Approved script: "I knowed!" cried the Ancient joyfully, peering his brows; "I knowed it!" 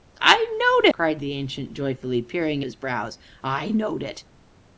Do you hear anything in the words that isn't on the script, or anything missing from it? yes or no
no